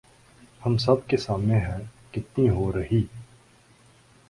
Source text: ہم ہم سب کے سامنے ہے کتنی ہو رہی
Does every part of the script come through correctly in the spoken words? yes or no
no